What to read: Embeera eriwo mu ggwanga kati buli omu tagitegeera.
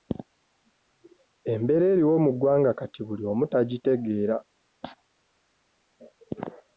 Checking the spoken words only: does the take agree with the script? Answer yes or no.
yes